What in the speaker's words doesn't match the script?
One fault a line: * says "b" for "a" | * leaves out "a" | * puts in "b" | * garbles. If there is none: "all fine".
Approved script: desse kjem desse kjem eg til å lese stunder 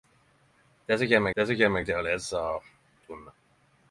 all fine